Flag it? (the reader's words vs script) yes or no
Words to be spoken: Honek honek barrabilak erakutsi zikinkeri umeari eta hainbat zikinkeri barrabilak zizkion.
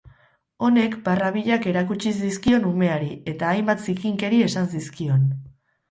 yes